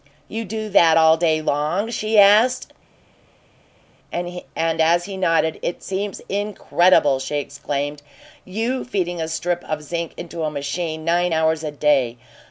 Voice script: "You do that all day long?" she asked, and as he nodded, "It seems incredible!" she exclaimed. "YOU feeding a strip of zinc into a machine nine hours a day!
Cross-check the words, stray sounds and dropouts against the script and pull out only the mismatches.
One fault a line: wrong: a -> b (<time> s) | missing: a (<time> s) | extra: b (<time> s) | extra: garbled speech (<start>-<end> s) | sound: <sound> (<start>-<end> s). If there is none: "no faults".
no faults